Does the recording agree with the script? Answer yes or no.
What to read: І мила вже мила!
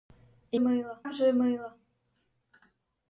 yes